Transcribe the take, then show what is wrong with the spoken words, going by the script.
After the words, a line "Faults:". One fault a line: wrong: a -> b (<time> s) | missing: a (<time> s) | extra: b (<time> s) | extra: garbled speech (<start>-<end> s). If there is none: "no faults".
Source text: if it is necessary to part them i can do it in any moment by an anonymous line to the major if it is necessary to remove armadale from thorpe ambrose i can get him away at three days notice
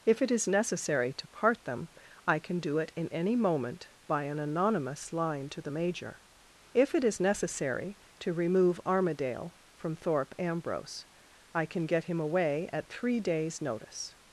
if it is necessary to part them i can do it in any moment by an anonymous line to the major if it is necessary to remove armadale from thorpe ambrose i can get him away at three days notice
Faults:
no faults